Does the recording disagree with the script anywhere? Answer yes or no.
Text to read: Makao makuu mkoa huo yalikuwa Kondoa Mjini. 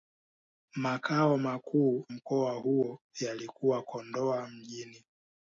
no